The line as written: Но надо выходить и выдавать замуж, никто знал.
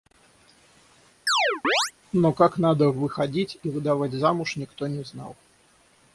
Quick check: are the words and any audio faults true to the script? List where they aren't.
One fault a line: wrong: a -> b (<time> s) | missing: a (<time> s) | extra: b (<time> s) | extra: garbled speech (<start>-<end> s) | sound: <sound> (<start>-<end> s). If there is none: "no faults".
sound: chirp (1.3-1.9 s)
extra: как (2.3 s)
extra: не (4.9 s)